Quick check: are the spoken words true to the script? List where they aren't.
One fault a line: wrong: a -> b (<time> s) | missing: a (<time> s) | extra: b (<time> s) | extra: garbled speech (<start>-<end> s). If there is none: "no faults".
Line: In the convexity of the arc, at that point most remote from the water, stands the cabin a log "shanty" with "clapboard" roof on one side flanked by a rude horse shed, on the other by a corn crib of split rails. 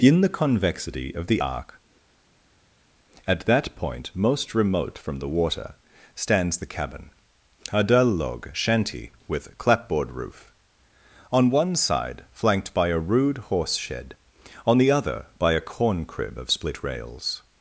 extra: dull (7.8 s)